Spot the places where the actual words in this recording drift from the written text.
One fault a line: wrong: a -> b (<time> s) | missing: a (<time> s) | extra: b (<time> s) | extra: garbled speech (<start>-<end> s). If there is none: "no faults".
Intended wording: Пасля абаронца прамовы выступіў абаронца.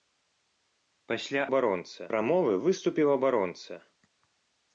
no faults